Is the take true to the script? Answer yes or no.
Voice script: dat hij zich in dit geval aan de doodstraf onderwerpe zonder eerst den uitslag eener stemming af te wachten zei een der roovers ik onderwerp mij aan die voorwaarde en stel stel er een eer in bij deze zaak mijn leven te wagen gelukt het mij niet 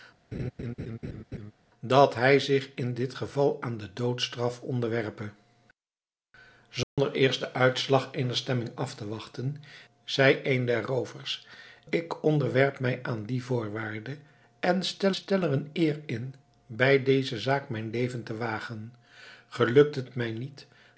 yes